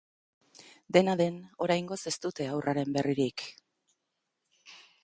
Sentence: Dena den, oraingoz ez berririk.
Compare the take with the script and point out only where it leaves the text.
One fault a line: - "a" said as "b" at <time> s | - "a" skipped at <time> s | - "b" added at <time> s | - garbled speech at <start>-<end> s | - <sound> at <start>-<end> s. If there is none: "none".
- "dute haurraren" added at 2.3 s